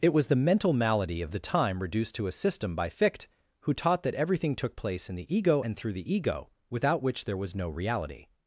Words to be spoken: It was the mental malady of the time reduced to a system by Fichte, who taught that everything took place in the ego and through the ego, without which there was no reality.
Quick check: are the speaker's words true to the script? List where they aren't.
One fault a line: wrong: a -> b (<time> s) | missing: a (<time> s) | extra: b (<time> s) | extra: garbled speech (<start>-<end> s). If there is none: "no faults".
no faults